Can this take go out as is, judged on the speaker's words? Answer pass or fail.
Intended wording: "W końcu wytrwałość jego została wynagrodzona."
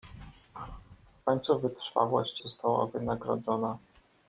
fail